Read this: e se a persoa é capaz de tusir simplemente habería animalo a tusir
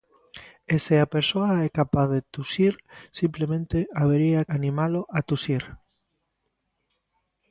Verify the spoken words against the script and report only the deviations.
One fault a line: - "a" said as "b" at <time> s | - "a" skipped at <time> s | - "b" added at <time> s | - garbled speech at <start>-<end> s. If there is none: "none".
none